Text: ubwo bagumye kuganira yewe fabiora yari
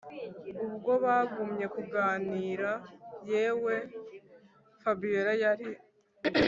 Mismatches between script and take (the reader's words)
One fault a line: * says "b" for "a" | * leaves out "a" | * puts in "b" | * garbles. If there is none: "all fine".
all fine